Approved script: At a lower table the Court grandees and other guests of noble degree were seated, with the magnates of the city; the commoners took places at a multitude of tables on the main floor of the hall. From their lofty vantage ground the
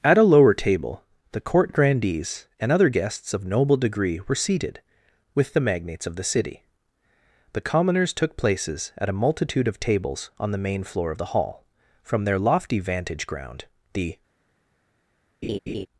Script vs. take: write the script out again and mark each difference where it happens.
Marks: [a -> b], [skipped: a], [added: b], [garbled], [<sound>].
At a lower table the Court grandees and other guests of noble degree were seated, with the magnates of the city; the commoners took places at a multitude of tables on the main floor of the hall. From their lofty vantage ground the [laugh]